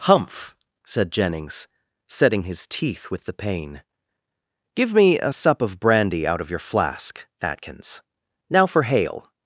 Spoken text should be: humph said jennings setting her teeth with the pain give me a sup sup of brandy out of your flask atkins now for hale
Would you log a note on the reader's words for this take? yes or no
yes